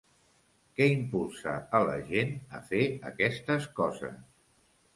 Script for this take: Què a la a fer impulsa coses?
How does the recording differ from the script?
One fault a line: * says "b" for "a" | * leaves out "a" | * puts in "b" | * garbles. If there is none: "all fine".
* puts in "impulsa"
* puts in "gent"
* says "aquestes" for "impulsa"